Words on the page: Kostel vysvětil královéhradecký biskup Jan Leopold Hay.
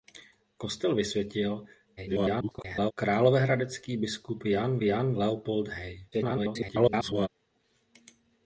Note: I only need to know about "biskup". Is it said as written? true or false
true